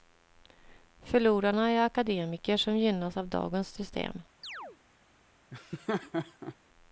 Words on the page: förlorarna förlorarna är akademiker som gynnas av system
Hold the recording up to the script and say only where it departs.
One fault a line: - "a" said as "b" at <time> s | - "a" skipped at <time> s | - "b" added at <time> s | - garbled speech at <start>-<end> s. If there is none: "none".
- "förlorarna" skipped at 1.7 s
- "dagens" added at 3.3 s